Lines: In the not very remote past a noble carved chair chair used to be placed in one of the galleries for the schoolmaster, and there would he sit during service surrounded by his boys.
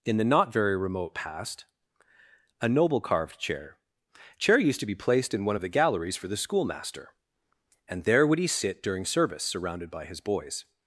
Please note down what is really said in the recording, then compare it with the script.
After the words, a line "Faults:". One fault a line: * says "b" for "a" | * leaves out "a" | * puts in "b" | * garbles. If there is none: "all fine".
In the not very remote past a noble carved chair chair used to be placed in one of the galleries for the schoolmaster, and there would he sit during service surrounded by his boys.
Faults:
all fine